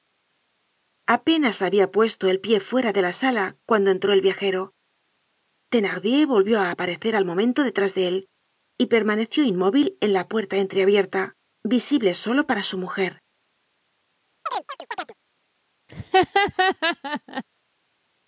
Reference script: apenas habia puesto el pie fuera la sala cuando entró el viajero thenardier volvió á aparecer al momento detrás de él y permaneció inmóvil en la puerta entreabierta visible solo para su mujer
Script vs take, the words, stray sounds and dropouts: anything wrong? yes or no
yes